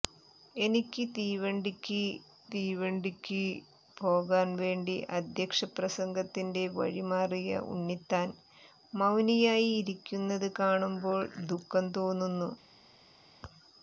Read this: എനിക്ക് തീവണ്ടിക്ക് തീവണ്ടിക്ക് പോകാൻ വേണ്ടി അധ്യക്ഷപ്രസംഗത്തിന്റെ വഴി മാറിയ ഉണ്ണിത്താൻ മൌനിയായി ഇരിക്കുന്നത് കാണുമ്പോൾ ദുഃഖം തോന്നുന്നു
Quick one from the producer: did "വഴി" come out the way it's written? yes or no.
yes